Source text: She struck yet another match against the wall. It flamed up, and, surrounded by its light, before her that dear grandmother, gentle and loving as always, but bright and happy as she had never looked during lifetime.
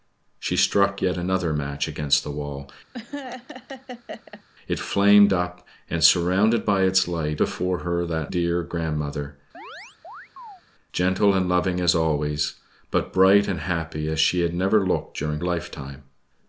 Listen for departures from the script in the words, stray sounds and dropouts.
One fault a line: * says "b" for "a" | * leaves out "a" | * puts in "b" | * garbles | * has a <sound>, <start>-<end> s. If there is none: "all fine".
* has a laugh, 2.9-4.4 s
* has a chirp, 9.5-10.6 s